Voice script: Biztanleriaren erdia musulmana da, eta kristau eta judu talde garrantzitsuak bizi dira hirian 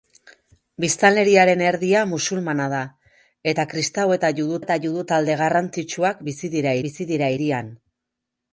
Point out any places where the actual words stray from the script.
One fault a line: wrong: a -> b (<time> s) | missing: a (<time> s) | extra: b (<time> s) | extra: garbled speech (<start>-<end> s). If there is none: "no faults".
extra: eta judu (4.6 s)
extra: bizi dira (6.9 s)